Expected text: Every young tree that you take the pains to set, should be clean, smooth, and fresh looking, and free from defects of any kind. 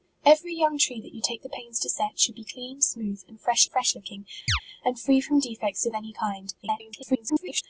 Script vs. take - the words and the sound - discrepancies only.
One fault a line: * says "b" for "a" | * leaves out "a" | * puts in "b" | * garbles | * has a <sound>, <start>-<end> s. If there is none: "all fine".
* puts in "fresh"
* has a chirp, 4.5-4.6 s
* garbles